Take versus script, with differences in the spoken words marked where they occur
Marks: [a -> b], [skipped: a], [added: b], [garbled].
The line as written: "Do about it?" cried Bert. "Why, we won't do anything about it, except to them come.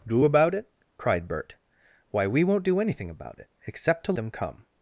"Do about it?" cried Bert. "Why, we won't do anything about it, except to them come.